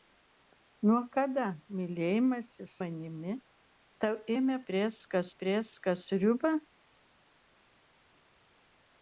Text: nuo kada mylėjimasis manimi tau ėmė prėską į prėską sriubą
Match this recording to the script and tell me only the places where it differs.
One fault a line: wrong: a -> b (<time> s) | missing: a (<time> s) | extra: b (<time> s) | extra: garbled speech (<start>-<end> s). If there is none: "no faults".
no faults